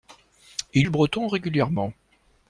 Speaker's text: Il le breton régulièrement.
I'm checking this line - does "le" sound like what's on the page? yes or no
yes